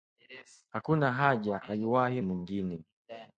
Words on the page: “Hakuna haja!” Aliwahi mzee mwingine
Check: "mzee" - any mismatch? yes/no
yes